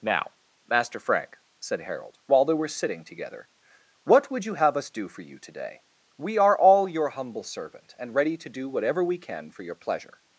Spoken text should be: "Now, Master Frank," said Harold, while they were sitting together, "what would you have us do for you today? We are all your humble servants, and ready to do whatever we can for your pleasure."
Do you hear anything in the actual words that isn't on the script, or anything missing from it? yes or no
yes